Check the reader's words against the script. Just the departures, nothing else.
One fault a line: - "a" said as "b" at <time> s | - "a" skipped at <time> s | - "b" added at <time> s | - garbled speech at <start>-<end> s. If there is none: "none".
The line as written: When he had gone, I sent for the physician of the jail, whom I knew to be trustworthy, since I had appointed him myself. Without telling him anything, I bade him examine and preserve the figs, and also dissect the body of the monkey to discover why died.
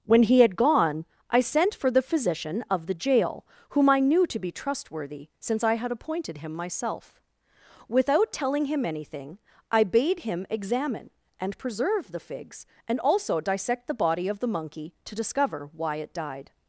- "it" added at 16.0 s